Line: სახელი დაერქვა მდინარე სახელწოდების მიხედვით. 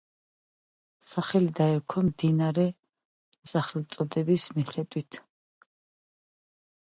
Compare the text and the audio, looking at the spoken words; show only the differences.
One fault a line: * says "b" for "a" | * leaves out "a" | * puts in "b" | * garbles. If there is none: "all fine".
all fine